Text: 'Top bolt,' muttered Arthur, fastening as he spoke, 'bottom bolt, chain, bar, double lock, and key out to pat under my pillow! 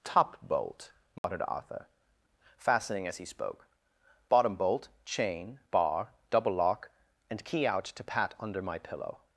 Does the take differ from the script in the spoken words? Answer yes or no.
no